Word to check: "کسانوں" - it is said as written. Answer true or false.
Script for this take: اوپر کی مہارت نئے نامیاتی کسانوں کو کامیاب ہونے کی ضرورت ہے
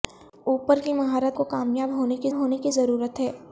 false